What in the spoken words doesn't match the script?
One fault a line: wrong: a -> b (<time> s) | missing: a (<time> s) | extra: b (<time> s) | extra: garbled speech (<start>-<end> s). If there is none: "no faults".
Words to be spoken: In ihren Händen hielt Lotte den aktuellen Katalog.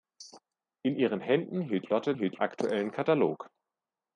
wrong: den -> hielt (2.1 s)